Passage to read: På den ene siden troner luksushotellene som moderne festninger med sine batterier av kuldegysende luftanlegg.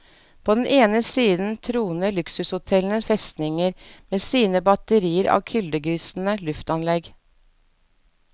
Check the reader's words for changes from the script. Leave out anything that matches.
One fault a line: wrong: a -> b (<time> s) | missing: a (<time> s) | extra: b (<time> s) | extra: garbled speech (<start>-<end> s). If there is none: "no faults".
missing: som moderne (3.0 s)